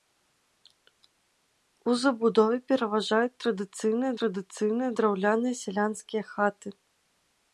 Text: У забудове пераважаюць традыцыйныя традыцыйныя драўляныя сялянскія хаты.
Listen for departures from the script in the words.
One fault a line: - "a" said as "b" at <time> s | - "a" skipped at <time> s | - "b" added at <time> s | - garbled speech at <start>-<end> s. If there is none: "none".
none